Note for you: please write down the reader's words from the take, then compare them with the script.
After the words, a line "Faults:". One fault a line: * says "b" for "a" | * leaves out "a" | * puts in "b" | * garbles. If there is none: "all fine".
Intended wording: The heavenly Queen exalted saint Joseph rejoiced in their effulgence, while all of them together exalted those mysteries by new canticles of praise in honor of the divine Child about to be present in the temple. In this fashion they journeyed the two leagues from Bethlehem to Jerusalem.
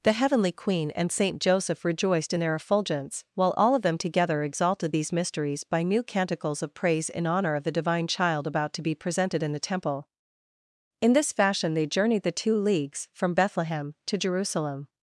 The heavenly Queen and saint Joseph rejoiced in their effulgence, while all of them together exalted these mysteries by new canticles of praise in honor of the divine Child about to be presented in the temple. In this fashion they journeyed the two leagues from Bethlehem to Jerusalem.
Faults:
* says "and" for "exalted"
* says "these" for "those"
* says "presented" for "present"